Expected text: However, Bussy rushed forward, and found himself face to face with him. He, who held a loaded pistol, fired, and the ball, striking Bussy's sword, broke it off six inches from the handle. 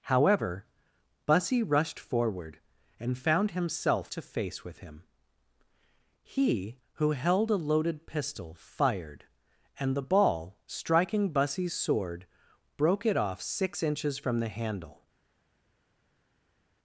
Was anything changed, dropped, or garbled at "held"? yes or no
no